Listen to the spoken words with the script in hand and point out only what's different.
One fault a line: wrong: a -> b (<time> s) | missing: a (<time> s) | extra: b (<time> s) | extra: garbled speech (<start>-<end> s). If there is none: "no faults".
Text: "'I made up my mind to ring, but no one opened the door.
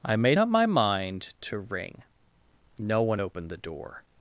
missing: but (2.0 s)